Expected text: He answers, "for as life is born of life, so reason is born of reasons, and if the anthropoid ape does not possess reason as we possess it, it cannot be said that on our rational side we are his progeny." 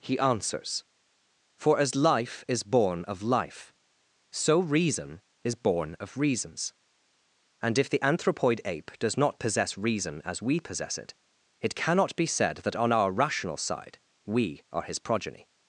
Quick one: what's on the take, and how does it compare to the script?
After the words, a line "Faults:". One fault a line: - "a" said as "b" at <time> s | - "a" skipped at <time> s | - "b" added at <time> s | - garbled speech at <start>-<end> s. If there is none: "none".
He answers, "for as life is born of life, so reason is born of reasons, and if the anthropoid ape does not possess reason as we possess it, it cannot be said that on our rational side we are his progeny."
Faults:
none